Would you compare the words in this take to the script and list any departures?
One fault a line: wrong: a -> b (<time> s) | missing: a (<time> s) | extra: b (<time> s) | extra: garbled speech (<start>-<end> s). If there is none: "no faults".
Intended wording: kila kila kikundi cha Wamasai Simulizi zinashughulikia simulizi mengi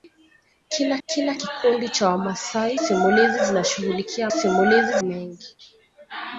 no faults